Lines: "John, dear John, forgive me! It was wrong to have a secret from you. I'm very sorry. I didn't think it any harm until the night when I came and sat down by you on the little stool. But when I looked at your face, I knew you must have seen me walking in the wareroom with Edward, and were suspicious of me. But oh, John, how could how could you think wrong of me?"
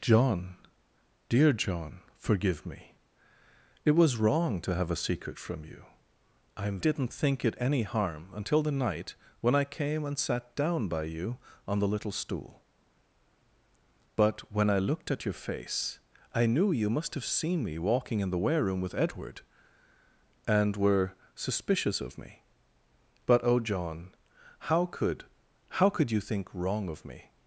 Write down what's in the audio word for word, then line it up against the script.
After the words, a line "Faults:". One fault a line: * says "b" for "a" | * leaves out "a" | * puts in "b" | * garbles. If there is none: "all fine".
"John, dear John, forgive me! It was wrong to have a secret from you. I'm didn't think it any harm until the night when I came and sat down by you on the little stool. But when I looked at your face, I knew you must have seen me walking in the wareroom with Edward, and were suspicious of me. But oh, John, how could how could you think wrong of me?"
Faults:
* leaves out "very sorry I"